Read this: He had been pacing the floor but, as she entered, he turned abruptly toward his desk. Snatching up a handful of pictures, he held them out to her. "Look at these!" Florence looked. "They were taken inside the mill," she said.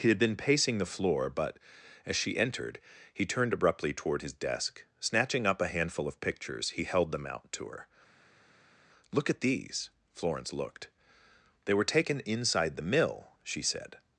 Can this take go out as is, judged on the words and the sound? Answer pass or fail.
pass